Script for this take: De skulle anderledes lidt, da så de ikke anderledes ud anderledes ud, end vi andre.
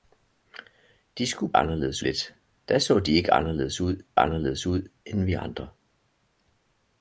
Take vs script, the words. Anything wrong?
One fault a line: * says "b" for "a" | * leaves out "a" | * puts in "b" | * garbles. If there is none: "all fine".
all fine